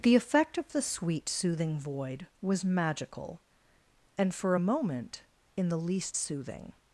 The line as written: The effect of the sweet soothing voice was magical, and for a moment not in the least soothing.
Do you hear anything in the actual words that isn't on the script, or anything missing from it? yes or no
yes